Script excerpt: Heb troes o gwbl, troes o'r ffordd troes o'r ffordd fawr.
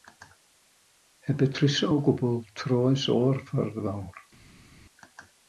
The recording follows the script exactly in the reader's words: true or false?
false